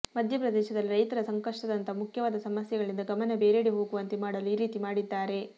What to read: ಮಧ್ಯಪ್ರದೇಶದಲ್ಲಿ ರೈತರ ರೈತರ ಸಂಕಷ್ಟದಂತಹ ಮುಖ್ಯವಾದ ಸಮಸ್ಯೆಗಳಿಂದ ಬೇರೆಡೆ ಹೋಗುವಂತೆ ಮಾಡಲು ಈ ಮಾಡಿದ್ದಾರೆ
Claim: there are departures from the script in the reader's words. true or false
true